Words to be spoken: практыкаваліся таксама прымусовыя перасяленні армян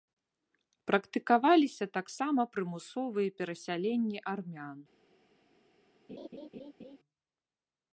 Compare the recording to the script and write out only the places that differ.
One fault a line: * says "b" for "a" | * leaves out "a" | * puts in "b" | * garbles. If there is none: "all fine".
all fine